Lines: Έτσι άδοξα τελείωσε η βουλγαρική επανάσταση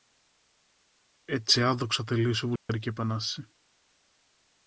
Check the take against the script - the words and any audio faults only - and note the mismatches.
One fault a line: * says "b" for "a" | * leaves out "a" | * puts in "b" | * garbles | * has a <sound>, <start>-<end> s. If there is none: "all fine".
* has a dropout, 2.6-2.7 s